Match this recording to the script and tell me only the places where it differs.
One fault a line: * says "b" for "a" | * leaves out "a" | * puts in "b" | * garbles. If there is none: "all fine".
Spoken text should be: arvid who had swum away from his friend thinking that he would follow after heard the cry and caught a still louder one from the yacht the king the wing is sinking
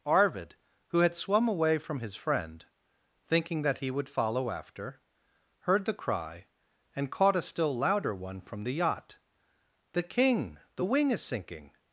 all fine